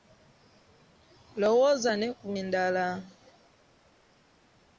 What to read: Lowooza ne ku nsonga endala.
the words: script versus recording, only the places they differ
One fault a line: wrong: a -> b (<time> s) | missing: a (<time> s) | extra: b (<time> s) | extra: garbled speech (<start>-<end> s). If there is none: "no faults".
missing: nsonga (2.3 s)